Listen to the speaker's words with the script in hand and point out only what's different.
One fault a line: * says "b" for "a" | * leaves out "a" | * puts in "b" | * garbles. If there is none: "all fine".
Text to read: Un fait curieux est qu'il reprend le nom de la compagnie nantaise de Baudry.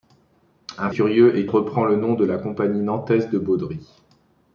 * leaves out "fait"
* leaves out "qu'il"